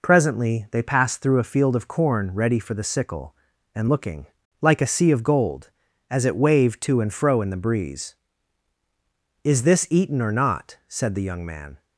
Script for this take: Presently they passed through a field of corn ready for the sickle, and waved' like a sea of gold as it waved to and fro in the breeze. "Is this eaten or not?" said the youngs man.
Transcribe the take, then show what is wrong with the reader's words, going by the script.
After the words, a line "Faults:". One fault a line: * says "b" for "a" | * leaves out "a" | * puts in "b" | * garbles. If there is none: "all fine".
Presently they passed through a field of corn ready for the sickle, and looking' like a sea of gold as it waved to and fro in the breeze. "Is this eaten or not?" said the young man.
Faults:
* says "looking" for "waved"
* says "young" for "youngs"